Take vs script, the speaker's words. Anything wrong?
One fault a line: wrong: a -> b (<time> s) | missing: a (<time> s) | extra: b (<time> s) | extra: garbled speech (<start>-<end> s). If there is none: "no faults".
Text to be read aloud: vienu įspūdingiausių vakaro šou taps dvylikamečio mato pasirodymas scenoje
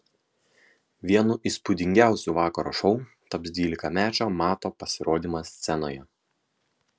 no faults